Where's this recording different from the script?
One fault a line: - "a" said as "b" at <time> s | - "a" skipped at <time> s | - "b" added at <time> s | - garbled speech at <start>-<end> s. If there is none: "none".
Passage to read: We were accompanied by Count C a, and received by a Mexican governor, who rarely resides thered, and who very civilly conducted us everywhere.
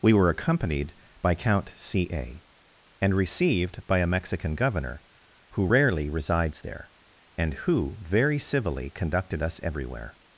- "thered" said as "there" at 6.6 s